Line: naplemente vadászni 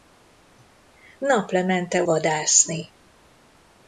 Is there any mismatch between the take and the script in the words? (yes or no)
no